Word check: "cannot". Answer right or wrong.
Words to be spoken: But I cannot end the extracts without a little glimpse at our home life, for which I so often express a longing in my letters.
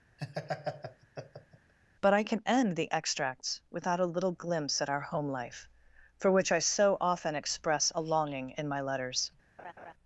wrong